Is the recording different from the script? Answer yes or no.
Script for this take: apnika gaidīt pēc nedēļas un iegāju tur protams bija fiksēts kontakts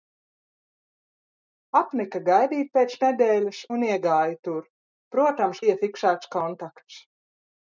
no